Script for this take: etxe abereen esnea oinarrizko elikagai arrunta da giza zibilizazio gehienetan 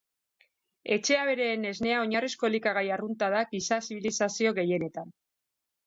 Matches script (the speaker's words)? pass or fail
pass